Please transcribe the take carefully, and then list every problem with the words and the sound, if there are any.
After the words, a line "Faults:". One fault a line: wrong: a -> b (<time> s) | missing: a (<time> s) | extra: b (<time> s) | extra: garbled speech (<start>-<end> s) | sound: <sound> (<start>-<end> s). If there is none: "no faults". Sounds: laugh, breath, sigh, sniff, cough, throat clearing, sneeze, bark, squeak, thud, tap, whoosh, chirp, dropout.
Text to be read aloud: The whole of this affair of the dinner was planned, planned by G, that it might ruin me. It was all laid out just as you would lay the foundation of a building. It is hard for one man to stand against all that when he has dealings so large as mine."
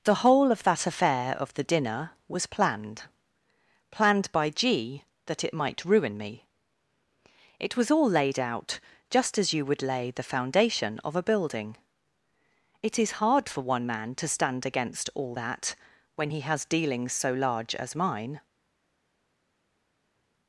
The whole of that affair of the dinner was planned, planned by G, that it might ruin me. It was all laid out just as you would lay the foundation of a building. It is hard for one man to stand against all that when he has dealings so large as mine."
Faults:
wrong: this -> that (0.6 s)